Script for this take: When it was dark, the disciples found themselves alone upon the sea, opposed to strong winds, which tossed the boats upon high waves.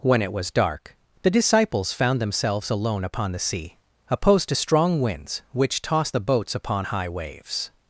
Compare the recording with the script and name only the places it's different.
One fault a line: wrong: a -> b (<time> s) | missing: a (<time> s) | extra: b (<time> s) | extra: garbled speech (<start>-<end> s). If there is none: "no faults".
no faults